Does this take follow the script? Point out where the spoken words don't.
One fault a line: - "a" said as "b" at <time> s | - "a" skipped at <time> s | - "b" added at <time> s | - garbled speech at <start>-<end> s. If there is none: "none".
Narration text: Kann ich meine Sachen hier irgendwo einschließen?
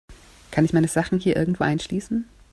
none